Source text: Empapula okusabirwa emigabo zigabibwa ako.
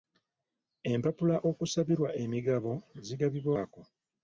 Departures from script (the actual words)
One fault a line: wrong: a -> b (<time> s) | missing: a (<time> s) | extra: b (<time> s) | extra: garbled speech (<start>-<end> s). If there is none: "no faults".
no faults